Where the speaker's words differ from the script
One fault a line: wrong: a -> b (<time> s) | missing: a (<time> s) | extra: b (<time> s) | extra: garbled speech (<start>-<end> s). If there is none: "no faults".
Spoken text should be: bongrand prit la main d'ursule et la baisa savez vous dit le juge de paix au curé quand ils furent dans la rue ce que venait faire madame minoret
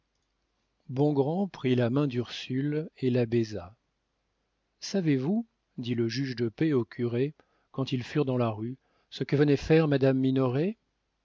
no faults